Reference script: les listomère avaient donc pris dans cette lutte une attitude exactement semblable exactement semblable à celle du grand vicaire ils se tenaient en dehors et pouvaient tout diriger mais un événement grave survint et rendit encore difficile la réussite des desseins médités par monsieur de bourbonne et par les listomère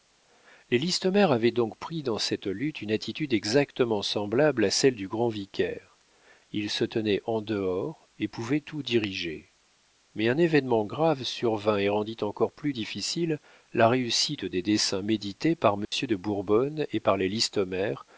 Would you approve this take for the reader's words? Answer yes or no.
no